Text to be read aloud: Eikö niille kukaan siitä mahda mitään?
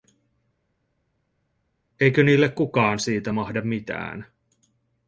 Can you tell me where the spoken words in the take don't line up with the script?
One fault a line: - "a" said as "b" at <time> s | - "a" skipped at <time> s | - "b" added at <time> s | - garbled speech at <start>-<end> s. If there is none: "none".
none